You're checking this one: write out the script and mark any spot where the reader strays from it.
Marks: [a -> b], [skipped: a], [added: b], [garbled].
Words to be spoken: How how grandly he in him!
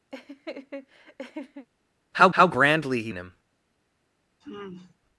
How how grandly he in him!